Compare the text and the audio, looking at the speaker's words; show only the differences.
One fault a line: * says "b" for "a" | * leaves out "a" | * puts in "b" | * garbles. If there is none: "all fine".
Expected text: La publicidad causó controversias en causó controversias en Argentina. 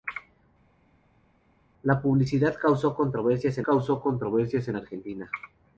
all fine